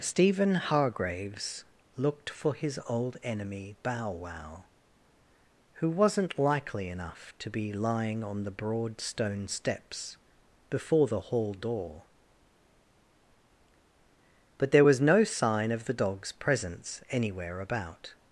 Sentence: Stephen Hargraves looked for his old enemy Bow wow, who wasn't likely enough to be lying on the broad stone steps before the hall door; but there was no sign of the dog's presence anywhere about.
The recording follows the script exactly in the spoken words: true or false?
true